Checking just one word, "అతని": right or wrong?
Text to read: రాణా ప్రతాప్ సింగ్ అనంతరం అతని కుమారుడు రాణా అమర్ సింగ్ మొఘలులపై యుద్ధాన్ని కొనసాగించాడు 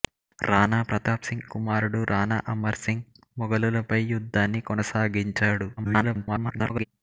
wrong